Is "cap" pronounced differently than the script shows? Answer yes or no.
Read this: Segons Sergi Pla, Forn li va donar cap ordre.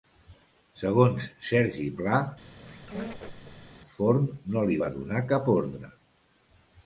no